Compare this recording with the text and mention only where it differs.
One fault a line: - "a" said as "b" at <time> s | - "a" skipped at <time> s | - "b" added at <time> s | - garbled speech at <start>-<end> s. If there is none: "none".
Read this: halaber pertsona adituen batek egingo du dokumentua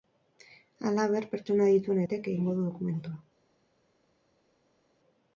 none